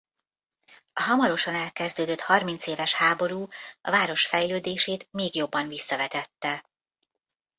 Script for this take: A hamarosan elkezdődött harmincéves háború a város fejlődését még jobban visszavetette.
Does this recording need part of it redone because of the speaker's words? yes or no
no